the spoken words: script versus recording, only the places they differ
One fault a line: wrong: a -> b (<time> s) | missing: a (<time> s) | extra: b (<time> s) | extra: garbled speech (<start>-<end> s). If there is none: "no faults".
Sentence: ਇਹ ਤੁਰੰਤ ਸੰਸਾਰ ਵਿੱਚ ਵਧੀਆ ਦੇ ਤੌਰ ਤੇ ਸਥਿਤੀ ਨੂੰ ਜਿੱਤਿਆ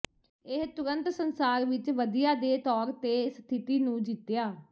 no faults